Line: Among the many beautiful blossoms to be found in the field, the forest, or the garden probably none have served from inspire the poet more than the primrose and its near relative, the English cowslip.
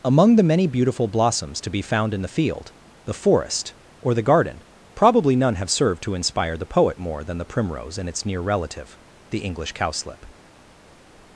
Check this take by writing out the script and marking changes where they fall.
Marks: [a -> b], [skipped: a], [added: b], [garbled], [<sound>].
Among the many beautiful blossoms to be found in the field, the forest, or the garden probably none have served [from -> to] inspire the poet more than the primrose and its near relative, the English cowslip.